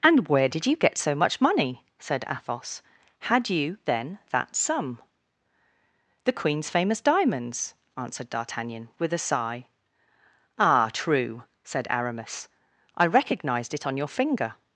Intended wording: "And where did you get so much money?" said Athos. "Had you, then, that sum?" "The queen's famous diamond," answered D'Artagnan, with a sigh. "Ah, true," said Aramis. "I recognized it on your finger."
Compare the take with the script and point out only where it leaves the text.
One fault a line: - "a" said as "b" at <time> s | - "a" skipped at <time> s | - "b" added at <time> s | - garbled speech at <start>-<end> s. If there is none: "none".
- "diamond" said as "diamonds" at 7.0 s